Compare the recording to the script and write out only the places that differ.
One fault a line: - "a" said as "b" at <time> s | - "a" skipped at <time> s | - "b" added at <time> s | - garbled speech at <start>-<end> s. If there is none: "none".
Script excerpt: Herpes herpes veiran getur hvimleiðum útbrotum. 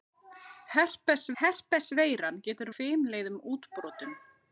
none